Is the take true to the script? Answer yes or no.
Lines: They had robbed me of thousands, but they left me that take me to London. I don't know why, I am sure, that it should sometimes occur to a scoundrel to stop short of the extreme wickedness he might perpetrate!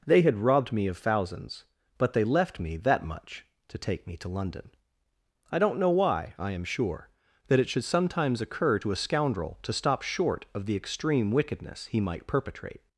no